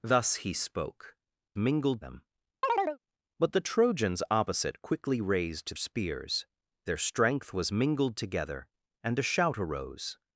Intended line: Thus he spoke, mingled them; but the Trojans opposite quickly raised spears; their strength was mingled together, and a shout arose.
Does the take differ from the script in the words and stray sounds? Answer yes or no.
yes